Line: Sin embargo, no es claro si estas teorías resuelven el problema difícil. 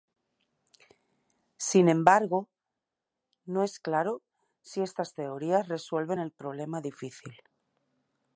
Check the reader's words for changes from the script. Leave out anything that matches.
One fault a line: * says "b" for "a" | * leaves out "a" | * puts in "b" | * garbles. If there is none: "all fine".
all fine